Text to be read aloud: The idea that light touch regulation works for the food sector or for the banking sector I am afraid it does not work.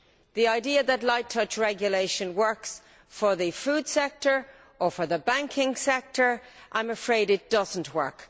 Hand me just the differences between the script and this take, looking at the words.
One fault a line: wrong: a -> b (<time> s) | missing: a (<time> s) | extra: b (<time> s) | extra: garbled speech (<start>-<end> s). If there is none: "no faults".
no faults